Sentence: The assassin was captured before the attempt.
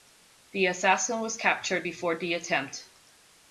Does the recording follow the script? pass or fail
pass